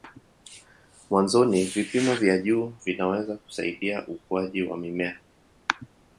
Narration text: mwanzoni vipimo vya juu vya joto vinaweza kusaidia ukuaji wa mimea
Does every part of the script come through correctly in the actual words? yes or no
no